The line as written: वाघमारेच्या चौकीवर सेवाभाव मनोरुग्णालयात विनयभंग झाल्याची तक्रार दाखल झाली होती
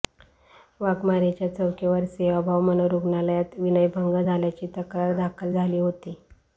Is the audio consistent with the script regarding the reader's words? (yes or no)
yes